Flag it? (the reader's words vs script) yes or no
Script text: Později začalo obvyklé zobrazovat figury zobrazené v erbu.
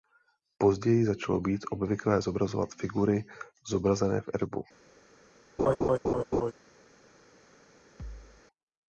yes